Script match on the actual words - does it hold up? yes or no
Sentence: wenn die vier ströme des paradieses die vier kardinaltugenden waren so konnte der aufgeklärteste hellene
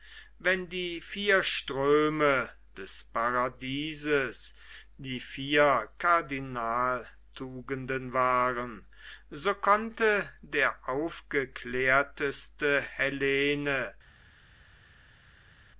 yes